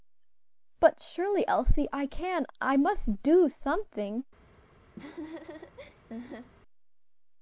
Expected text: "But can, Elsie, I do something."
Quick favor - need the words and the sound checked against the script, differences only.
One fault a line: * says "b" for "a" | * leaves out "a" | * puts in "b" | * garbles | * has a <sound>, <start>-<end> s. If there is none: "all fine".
* says "surely" for "can"
* puts in "can I must"
* has a laugh, 5.0-6.5 s